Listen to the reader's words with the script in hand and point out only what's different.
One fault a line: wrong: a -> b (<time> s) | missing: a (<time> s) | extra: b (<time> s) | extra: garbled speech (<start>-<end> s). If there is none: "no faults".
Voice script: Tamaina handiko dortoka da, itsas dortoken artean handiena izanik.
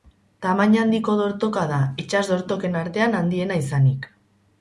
no faults